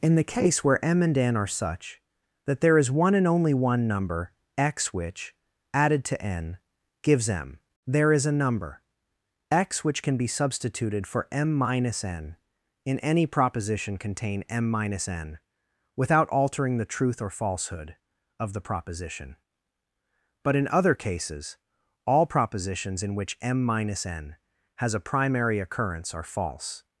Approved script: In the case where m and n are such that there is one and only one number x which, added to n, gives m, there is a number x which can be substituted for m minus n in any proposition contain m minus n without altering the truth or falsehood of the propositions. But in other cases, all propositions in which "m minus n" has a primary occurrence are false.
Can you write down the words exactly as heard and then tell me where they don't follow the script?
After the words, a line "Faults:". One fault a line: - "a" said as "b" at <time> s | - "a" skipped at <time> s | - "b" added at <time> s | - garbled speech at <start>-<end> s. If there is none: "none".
In the case where m and n are such that there is one and only one number x which, added to n, gives m, there is a number x which can be substituted for m minus n in any proposition contain m minus n without altering the truth or falsehood of the proposition. But in other cases, all propositions in which "m minus n" has a primary occurrence are false.
Faults:
- "propositions" said as "proposition" at 18.6 s